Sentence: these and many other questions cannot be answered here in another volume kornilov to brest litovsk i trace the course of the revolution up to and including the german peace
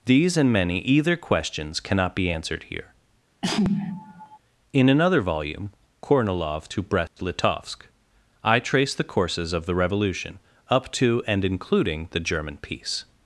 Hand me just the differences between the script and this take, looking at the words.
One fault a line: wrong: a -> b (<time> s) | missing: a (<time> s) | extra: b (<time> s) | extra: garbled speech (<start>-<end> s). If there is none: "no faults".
wrong: other -> either (0.8 s)
wrong: course -> courses (9.0 s)